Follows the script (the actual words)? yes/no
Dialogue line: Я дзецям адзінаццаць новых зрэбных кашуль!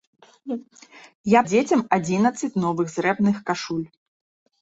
yes